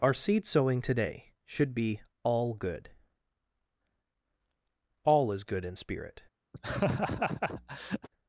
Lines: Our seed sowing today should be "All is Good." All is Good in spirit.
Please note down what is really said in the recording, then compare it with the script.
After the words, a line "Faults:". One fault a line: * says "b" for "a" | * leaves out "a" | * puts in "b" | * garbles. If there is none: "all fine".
Our seed sowing today should be "All Good." All is Good in spirit.
Faults:
* leaves out "is"